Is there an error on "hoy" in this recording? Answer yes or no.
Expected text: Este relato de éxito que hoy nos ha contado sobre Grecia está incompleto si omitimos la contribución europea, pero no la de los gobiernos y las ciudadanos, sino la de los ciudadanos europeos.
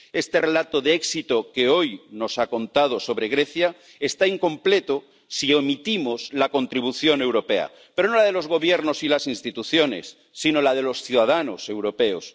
no